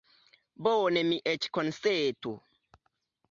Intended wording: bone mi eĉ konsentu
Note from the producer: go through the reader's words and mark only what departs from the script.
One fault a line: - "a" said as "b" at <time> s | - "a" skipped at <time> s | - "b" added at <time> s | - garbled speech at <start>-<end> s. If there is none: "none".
none